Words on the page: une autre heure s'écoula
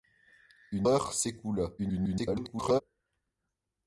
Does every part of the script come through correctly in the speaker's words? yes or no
no